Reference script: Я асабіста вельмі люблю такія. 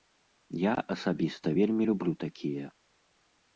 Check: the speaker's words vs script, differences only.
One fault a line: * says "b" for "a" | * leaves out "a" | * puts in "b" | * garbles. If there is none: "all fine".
all fine